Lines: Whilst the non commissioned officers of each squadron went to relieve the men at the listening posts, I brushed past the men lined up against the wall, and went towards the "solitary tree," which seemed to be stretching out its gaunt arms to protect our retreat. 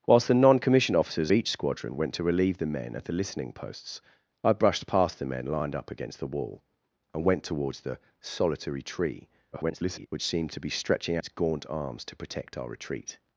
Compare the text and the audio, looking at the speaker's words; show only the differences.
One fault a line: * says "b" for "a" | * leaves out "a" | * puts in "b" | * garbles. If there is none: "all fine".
* leaves out "of"
* garbles
* leaves out "out"